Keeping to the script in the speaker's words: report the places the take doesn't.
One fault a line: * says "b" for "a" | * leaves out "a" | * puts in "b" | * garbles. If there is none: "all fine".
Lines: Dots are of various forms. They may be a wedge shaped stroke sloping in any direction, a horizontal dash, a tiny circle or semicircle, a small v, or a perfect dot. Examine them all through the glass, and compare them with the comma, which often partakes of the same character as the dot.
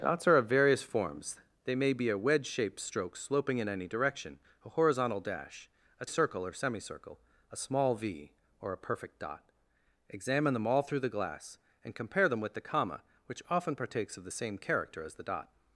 * leaves out "tiny"